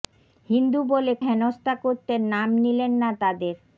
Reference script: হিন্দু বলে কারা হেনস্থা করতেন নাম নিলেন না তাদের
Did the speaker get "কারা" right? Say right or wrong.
wrong